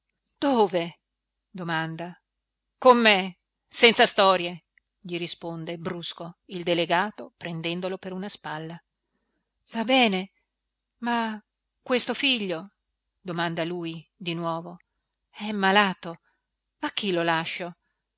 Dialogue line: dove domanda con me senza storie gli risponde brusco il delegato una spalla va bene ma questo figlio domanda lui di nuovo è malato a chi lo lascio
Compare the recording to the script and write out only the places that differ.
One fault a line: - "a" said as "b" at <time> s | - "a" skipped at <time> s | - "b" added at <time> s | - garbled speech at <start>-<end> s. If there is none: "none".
- "prendendolo per" added at 7.4 s